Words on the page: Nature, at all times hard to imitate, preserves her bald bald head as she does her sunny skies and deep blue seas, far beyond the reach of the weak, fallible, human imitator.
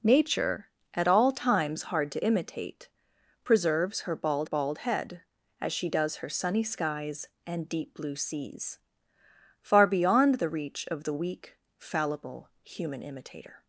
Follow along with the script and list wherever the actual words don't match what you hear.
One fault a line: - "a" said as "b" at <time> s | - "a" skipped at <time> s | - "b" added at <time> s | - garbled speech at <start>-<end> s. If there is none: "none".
none